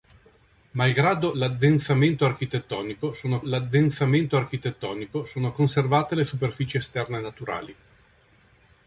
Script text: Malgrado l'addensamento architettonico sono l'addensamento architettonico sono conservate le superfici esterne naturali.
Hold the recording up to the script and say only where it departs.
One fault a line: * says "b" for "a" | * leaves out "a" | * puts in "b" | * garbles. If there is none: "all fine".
all fine